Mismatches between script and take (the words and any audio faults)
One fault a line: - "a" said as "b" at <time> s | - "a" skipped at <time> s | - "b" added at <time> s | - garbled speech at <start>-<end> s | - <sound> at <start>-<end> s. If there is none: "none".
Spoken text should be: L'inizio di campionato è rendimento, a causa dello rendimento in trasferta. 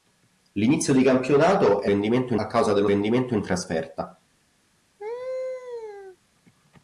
- laugh at 5.0-6.2 s